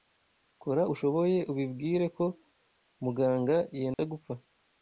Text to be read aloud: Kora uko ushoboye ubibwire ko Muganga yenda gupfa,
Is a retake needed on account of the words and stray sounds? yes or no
yes